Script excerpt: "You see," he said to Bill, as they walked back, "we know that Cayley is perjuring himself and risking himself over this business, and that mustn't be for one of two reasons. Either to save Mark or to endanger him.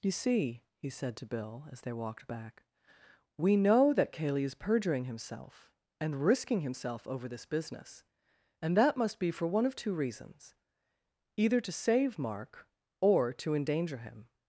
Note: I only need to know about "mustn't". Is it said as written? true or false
false